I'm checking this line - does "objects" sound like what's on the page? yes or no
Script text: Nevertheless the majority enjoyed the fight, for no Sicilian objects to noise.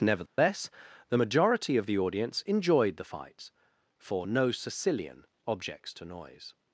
yes